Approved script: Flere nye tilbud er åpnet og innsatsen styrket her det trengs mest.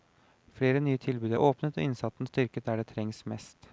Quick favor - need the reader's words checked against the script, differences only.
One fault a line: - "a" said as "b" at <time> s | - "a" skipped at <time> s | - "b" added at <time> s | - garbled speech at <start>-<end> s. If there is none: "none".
- "her" said as "der" at 2.6 s